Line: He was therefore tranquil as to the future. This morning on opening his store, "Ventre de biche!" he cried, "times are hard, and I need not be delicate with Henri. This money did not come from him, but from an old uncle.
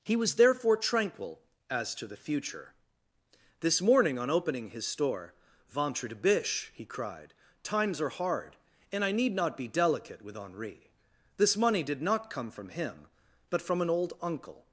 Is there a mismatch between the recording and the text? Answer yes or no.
no